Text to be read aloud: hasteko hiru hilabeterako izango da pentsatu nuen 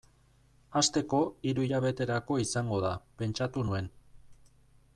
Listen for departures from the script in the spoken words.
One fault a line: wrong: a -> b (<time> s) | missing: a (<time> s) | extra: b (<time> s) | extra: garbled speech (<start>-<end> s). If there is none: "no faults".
no faults